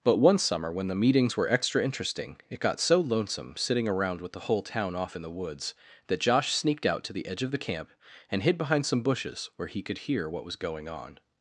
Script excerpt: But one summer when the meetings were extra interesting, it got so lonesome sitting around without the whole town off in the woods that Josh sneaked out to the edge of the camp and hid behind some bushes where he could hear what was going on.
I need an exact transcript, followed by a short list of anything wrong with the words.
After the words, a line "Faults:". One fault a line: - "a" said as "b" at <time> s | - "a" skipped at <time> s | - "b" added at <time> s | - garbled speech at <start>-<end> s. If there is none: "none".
But one summer when the meetings were extra interesting, it got so lonesome sitting around with the whole town off in the woods that Josh sneaked out to the edge of the camp and hid behind some bushes where he could hear what was going on.
Faults:
- "without" said as "with" at 4.2 s